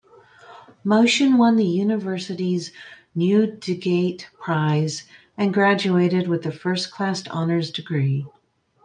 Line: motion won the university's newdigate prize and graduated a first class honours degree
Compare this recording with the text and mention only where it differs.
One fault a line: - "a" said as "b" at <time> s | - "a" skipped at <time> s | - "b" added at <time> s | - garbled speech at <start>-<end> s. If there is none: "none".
- "with" added at 6.3 s